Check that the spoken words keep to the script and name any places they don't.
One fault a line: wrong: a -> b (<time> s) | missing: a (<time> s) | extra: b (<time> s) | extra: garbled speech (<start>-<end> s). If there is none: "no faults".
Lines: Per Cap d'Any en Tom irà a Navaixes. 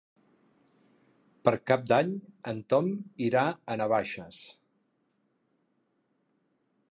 no faults